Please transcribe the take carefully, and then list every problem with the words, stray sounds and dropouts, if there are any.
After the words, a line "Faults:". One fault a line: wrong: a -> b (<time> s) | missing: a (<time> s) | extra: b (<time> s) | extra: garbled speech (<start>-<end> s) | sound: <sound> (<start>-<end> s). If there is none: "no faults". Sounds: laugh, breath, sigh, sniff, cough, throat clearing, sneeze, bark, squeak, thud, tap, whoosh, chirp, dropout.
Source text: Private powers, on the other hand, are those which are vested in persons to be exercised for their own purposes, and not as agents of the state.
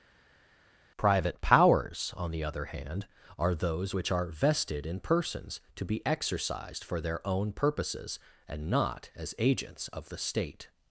Private powers, on the other hand, are those which are vested in persons to be exercised for their own purposes, and not as agents of the state.
Faults:
no faults